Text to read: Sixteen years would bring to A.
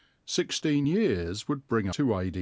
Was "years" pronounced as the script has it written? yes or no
yes